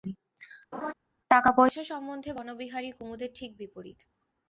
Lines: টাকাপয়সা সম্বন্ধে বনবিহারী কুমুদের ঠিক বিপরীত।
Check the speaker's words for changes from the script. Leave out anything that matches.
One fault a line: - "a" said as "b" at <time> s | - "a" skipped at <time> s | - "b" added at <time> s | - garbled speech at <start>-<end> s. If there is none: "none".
none